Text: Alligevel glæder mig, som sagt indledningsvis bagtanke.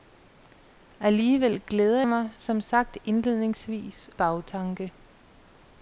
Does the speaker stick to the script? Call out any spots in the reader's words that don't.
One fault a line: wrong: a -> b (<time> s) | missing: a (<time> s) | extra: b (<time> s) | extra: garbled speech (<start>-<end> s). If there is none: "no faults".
no faults